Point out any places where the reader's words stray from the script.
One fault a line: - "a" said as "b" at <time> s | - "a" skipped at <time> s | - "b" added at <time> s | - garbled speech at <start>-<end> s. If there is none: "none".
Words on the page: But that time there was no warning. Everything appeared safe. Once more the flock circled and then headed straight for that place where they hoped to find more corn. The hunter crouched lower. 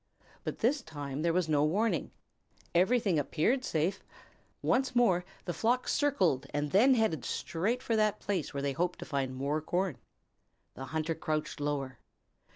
- "that" said as "this" at 0.6 s